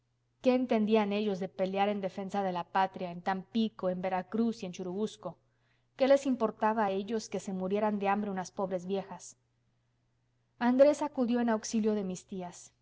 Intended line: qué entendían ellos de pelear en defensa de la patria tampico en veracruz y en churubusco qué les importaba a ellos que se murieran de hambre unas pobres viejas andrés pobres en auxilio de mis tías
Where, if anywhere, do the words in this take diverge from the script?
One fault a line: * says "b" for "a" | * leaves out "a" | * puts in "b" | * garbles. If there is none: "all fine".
* puts in "en"
* says "acudió" for "pobres"